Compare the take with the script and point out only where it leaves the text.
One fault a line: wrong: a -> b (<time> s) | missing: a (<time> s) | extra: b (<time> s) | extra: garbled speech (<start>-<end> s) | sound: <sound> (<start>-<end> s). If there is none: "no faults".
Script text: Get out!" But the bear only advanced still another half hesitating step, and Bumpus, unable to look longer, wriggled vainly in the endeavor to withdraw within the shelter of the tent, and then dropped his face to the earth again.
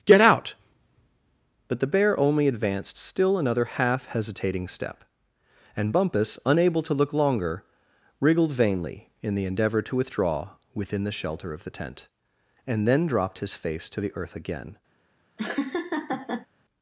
sound: laugh (15.4-16.5 s)